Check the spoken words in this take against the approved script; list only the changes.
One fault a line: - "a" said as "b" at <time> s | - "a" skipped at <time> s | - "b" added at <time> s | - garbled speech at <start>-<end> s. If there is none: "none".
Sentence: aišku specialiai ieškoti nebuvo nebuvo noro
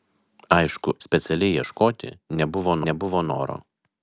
none